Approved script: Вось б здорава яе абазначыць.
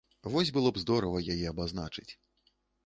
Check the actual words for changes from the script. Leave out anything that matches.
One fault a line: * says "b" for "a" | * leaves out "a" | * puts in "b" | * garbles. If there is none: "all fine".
* puts in "было"